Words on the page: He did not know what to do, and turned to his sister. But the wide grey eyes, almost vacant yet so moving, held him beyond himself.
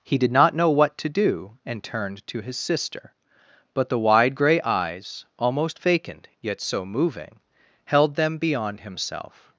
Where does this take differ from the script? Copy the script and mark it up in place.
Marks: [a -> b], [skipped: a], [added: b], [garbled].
He did not know what to do, and turned to his sister. But the wide grey eyes, almost vacant yet so moving, held [him -> them] beyond himself.